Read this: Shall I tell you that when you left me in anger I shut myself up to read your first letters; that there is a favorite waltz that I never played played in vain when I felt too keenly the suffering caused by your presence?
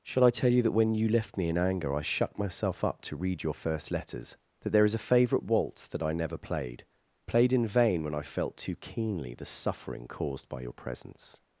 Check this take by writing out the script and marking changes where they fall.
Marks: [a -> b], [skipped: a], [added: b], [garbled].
Shall I tell you that when you left me in anger I shut myself up to read your first letters; that there is a favorite waltz that I never played played in vain when I felt too keenly the suffering caused by your presence?